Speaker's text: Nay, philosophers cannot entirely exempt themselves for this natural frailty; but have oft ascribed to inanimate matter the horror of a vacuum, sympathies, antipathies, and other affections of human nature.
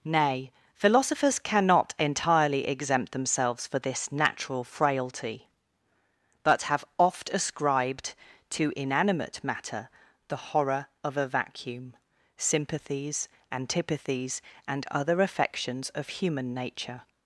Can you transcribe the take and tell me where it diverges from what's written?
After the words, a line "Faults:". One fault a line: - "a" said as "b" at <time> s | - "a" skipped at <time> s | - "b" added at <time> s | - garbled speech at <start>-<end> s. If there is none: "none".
Nay, philosophers cannot entirely exempt themselves for this natural frailty; but have oft ascribed to inanimate matter the horror of a vacuum, sympathies, antipathies, and other affections of human nature.
Faults:
none